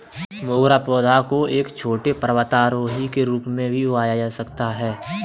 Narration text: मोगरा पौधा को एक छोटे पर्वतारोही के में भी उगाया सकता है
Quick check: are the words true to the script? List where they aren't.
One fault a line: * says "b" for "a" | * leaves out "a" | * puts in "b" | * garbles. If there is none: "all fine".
* puts in "रूप"
* puts in "जा"